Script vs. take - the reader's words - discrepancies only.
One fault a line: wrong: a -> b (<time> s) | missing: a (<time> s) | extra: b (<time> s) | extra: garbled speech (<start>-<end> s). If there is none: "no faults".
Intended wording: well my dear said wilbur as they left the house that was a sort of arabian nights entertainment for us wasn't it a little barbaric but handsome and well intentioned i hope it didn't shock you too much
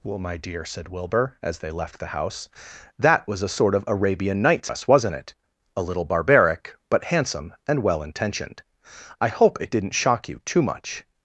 missing: entertainment for (4.7 s)